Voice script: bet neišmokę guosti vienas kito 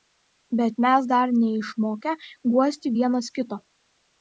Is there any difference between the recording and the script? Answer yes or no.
yes